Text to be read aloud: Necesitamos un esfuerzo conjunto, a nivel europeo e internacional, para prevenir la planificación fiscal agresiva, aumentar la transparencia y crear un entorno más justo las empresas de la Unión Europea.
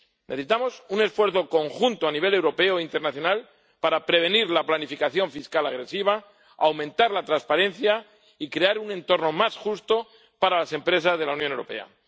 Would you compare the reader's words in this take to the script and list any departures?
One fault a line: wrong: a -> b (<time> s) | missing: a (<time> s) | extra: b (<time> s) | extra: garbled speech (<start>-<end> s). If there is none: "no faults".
extra: para (10.4 s)